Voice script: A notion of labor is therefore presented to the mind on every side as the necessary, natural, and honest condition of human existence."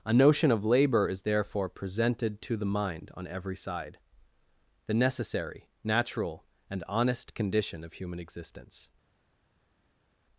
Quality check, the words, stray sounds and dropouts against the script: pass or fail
fail